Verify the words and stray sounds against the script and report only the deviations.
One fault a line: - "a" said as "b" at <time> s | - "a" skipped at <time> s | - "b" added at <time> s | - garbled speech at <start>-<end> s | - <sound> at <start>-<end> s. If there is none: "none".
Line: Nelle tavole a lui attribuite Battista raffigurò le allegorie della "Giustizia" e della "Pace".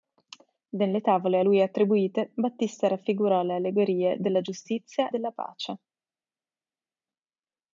- "e" skipped at 5.1 s